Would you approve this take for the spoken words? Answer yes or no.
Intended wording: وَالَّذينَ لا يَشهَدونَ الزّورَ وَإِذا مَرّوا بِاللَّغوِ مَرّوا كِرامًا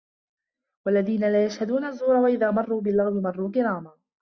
yes